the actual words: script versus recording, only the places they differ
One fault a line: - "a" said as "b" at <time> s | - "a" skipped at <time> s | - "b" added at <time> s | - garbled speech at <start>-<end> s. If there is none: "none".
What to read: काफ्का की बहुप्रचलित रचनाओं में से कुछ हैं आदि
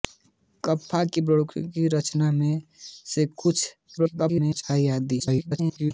- garbled speech at 4.0-4.6 s
- garbled speech at 5.2-5.9 s